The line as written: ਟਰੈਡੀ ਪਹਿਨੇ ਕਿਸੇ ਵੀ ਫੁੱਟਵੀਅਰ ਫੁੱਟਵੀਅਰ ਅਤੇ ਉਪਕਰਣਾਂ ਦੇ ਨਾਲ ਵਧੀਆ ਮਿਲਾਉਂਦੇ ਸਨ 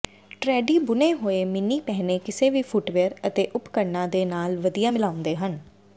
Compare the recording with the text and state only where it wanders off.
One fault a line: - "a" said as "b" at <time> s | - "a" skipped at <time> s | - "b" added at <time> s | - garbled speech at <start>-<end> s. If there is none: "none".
- "ਬੁਣੇ ਹੋਏ ਮਿੰਨੀ" added at 0.8 s
- "ਫੁੱਟਵੀਅਰ" skipped at 3.1 s
- "ਸਨ" said as "ਹਨ" at 5.4 s